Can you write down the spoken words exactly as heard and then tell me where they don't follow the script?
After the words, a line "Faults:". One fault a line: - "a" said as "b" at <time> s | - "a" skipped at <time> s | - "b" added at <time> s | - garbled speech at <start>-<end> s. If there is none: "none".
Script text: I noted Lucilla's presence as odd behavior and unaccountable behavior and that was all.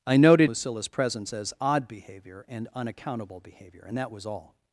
I noted Lucilla's presence as odd behavior and unaccountable behavior and that was all.
Faults:
none